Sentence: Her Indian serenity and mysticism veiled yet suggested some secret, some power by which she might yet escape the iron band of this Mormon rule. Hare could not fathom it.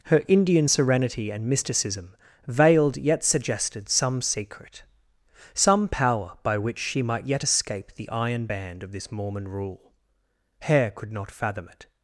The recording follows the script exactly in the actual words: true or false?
true